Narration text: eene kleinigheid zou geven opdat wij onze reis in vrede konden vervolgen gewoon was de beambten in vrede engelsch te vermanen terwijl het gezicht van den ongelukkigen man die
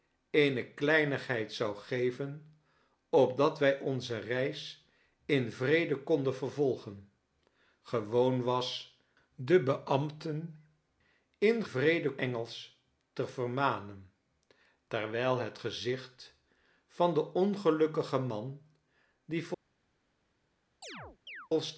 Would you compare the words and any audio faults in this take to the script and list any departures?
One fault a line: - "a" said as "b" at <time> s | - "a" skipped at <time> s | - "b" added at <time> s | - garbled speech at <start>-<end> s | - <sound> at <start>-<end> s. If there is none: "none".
- chirp at 20.8-21.5 s